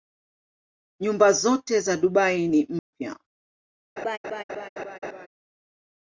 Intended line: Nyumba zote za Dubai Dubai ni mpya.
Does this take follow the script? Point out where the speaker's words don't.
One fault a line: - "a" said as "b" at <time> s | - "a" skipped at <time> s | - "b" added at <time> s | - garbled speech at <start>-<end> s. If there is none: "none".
- "Dubai" skipped at 2.5 s